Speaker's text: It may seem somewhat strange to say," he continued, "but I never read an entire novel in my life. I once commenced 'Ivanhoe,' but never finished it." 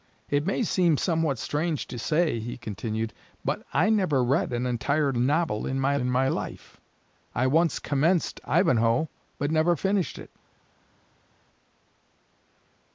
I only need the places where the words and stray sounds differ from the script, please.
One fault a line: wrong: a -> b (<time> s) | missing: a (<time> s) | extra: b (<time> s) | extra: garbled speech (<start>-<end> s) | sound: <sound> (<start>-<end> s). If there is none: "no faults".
extra: in my (6.0 s)